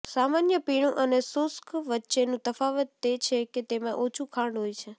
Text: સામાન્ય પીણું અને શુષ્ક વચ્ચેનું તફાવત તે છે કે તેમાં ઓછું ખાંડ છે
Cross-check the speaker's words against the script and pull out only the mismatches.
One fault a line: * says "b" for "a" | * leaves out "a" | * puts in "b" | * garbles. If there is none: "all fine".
* puts in "હોય"